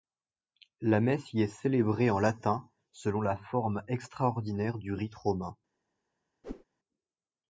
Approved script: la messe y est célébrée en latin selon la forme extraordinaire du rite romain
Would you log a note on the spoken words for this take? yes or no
no